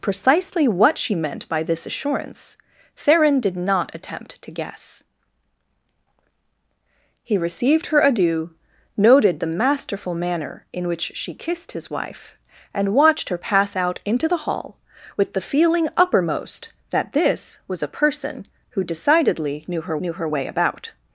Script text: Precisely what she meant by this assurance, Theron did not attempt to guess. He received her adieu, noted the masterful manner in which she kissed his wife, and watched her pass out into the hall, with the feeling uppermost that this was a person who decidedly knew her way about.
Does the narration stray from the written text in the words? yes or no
yes